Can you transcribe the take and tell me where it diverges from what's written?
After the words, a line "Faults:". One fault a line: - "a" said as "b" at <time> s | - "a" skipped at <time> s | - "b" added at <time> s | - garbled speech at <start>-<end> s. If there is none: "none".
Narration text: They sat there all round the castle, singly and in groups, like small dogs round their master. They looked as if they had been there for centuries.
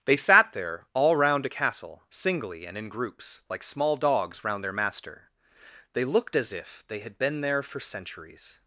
They sat there all round a castle, singly and in groups, like small dogs round their master. They looked as if they had been there for centuries.
Faults:
- "the" said as "a" at 1.4 s